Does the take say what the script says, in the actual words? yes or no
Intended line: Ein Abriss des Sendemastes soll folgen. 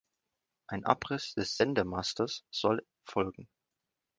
yes